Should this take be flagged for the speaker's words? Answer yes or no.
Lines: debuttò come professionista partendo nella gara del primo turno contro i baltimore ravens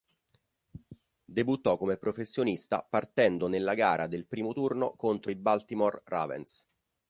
no